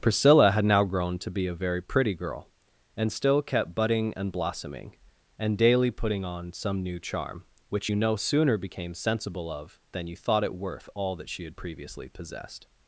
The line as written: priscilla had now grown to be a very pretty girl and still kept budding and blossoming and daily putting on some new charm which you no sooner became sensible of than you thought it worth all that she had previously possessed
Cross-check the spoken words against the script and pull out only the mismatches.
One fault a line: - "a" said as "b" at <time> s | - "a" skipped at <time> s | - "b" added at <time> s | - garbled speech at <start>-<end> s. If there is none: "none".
none